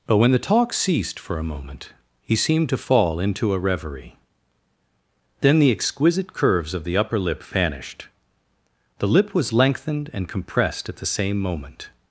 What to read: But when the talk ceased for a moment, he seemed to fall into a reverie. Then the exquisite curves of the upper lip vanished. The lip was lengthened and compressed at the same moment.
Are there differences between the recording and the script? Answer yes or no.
no